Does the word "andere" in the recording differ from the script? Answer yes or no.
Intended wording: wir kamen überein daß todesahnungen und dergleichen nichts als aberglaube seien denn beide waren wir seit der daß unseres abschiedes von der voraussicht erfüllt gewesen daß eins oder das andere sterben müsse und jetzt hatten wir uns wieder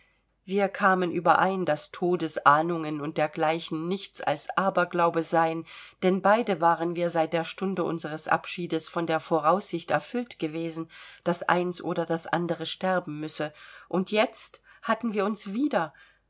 no